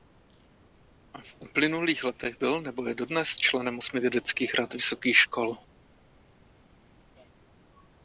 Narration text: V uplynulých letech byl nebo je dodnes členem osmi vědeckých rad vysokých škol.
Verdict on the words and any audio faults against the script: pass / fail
pass